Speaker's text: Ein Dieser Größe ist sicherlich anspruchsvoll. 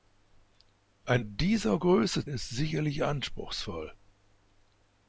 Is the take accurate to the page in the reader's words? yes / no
yes